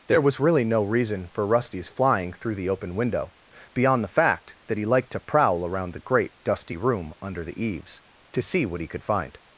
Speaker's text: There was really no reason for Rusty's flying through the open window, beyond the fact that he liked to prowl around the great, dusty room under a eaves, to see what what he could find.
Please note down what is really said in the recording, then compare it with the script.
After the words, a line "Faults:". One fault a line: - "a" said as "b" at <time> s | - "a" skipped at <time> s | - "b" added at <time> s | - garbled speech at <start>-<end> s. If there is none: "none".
There was really no reason for Rusty's flying through the open window, beyond the fact that he liked to prowl around the great, dusty room under the eaves, to see what he could find.
Faults:
- "a" said as "the" at 7.4 s
- "what" skipped at 8.8 s